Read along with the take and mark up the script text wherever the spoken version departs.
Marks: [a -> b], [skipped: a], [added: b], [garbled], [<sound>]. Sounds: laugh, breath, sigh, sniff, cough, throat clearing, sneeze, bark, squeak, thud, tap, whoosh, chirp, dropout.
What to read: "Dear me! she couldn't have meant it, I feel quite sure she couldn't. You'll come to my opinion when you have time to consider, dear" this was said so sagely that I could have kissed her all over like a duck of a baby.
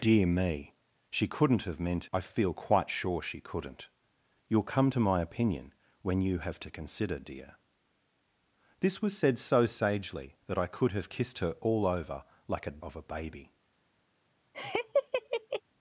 "Dear me! she couldn't have meant [skipped: it,] I feel quite sure she couldn't. You'll come to my opinion when you have [skipped: time] to consider, dear" this was said so sagely that I could have kissed her all over like a [skipped: duck] of a baby. [laugh]